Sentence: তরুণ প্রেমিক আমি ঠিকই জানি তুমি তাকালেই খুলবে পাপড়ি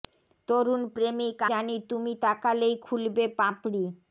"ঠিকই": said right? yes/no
no